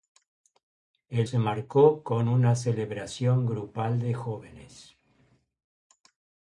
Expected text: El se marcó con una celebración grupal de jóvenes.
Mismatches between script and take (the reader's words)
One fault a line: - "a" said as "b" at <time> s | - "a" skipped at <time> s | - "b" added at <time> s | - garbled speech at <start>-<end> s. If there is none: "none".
none